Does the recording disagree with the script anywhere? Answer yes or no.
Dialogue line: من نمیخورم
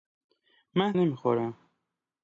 no